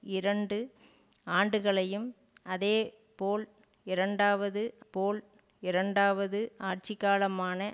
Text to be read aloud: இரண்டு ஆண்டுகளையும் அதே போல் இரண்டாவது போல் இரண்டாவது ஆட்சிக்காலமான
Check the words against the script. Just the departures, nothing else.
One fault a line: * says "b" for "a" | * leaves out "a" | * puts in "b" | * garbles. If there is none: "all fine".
all fine